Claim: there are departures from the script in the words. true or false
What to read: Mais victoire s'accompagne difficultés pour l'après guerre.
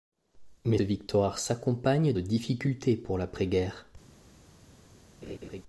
false